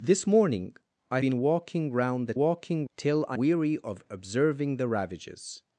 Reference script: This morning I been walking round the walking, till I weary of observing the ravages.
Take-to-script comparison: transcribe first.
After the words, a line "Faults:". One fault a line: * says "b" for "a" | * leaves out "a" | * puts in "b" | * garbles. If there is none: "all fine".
This morning I been walking round the walking, till I weary of observing the ravages.
Faults:
all fine